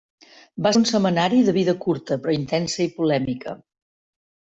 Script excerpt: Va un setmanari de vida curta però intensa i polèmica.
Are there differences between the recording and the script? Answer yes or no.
no